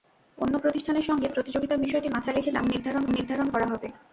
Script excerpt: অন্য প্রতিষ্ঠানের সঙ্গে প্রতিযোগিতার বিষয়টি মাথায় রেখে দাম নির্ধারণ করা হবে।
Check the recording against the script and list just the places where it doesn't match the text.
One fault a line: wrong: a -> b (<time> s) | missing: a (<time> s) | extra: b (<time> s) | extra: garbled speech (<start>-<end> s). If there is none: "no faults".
extra: নির্ধারণ (3.1 s)